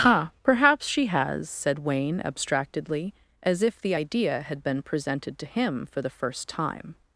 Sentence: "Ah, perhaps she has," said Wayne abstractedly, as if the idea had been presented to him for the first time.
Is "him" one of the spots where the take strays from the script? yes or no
no